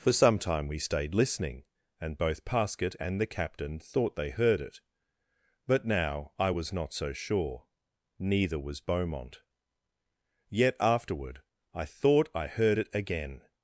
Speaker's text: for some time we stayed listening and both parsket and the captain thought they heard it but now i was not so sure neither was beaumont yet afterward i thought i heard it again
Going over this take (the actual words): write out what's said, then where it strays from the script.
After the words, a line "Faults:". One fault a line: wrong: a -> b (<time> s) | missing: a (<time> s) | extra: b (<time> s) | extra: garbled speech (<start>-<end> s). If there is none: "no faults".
for some time we stayed listening and both parsket and the captain thought they heard it but now i was not so sure neither was beaumont yet afterward i thought i heard it again
Faults:
no faults